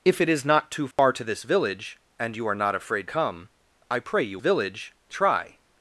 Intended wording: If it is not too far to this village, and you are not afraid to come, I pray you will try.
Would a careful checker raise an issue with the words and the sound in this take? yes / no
yes